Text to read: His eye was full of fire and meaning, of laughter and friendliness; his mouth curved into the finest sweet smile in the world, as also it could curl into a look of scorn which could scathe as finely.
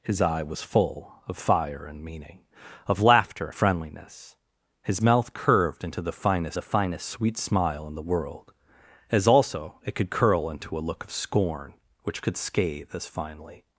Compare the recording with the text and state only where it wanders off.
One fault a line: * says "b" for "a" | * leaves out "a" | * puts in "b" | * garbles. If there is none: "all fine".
* leaves out "and"
* puts in "the finest"